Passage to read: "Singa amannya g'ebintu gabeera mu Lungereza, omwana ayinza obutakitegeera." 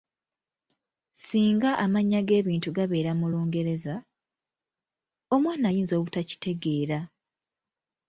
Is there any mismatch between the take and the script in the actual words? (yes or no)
no